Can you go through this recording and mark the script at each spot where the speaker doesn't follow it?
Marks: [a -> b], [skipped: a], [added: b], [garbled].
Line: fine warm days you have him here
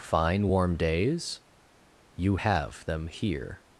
fine warm days you have [him -> them] here